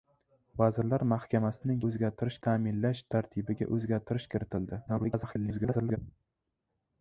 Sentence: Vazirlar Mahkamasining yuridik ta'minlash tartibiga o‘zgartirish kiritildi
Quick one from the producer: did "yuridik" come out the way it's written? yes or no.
no